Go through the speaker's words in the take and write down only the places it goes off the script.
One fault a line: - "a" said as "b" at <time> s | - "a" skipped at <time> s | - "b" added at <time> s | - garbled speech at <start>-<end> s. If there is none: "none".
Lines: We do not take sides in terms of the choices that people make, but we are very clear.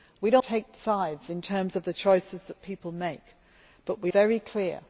- "not" skipped at 0.4 s
- "are" skipped at 4.1 s